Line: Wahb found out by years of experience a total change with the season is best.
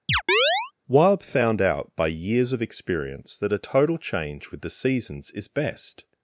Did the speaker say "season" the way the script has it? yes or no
no